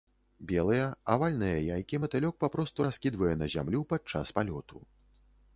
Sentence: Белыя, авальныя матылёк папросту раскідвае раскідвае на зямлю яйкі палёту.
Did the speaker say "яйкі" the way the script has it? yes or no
no